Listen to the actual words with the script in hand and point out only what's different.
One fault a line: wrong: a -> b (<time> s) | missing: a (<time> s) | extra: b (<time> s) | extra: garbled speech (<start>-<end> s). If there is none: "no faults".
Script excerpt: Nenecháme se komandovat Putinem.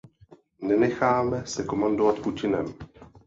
no faults